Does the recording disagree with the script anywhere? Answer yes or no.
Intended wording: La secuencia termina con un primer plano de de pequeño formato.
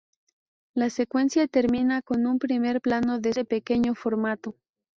no